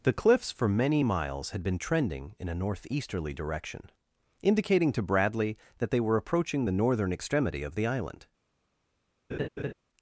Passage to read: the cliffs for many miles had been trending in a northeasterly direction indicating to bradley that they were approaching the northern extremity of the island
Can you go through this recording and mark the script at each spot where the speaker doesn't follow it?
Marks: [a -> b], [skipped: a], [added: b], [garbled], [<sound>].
the cliffs for many miles had been trending in a northeasterly direction indicating to bradley that they were approaching the northern extremity of the island [laugh]